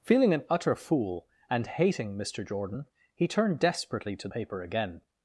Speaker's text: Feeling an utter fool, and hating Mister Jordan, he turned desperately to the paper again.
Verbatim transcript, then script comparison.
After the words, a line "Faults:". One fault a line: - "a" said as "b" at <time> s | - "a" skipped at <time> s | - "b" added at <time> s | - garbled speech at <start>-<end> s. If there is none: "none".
Feeling an utter fool, and hating Mister Jordan, he turned desperately to paper again.
Faults:
- "the" skipped at 4.3 s